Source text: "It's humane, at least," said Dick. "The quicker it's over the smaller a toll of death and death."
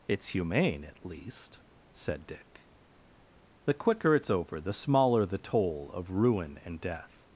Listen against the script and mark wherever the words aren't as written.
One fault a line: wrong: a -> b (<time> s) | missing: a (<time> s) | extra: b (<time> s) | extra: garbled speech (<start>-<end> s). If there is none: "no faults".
wrong: a -> the (5.2 s)
wrong: death -> ruin (6.1 s)